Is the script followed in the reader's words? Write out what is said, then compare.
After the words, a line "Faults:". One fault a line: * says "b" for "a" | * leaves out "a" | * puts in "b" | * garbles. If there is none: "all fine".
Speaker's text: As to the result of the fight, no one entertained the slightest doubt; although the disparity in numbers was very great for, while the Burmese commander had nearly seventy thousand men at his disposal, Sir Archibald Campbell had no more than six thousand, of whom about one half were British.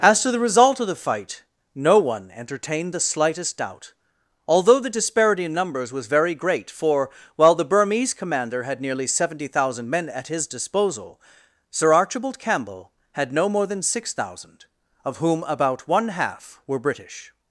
As to the result of the fight, no one entertained the slightest doubt; although the disparity in numbers was very great for, while the Burmese commander had nearly seventy thousand men at his disposal, Sir Archibald Campbell had no more than six thousand, of whom about one half were British.
Faults:
all fine